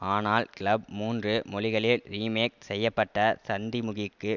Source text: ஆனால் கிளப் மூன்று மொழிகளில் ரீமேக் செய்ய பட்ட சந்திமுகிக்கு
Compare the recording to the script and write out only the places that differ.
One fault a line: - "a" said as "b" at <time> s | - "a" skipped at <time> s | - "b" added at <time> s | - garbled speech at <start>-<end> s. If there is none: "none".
none